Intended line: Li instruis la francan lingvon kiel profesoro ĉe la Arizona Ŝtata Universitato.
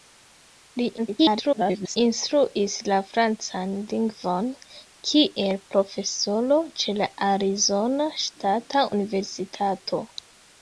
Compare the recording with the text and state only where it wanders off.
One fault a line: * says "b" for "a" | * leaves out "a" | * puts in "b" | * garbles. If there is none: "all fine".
* garbles